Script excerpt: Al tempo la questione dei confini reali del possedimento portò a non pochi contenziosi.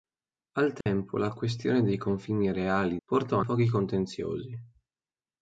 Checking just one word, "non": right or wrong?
wrong